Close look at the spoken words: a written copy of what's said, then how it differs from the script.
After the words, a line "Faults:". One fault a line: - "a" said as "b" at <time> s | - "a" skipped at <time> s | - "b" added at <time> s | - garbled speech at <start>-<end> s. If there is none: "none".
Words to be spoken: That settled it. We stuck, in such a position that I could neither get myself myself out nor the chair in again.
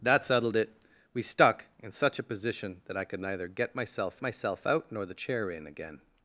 That settled it. We stuck, in such a position that I could neither get myself myself out nor the chair in again.
Faults:
none